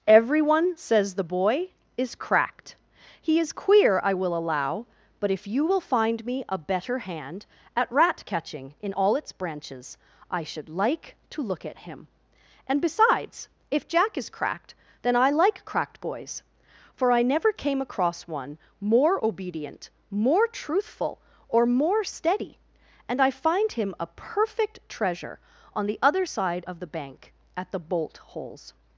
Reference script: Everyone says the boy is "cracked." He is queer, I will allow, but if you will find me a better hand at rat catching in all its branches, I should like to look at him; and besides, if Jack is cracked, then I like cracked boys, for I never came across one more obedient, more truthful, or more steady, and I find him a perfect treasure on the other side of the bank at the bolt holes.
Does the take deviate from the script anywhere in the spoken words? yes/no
no